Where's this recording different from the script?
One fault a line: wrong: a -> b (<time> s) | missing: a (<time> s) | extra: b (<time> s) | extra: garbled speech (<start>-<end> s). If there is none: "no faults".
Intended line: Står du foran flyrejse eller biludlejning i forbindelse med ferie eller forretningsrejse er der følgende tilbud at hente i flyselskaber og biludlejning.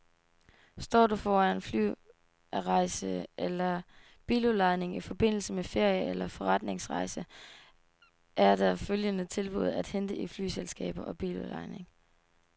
no faults